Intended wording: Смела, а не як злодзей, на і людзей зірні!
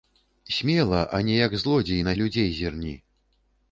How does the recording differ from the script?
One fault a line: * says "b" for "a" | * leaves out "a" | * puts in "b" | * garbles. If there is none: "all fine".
all fine